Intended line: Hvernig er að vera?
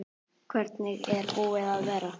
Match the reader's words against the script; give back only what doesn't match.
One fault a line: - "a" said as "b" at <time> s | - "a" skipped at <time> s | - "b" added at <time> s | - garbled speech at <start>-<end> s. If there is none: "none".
- "búið" added at 1.3 s